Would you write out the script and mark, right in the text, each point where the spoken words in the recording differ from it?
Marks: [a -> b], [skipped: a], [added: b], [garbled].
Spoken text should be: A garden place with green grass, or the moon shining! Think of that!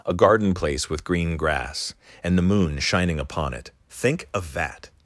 A garden place with green grass, [or -> and] the moon shining! [added: upon it] Think of that!